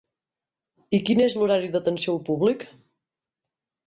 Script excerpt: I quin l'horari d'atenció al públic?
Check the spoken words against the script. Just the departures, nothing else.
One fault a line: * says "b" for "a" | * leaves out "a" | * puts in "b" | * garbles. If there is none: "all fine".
* puts in "és"